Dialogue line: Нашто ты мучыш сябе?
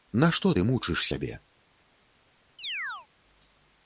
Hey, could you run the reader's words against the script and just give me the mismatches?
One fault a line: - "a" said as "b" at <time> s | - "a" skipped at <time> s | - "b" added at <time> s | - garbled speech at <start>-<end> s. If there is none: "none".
none